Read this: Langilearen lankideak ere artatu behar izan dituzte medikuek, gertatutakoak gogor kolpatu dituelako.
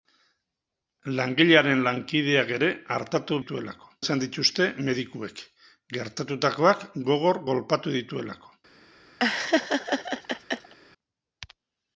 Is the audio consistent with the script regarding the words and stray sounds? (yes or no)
no